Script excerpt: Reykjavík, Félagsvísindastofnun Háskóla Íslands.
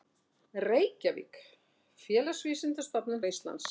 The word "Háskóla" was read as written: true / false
false